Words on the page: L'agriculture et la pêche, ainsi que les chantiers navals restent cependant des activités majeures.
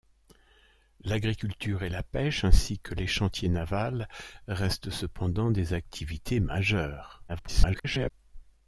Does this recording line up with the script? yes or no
no